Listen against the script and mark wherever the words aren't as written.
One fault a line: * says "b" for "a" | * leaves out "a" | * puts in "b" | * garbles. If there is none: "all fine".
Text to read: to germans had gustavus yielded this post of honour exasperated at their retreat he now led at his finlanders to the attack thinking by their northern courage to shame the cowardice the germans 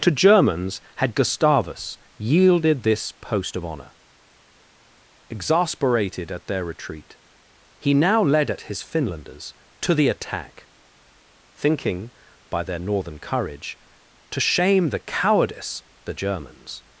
all fine